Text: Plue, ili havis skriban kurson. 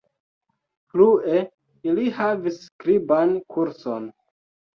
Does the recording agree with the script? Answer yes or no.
yes